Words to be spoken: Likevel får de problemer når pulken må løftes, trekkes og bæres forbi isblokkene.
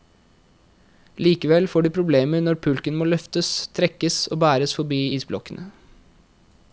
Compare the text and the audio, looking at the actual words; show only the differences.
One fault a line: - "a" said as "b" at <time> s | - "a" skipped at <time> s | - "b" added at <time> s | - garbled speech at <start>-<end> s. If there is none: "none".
none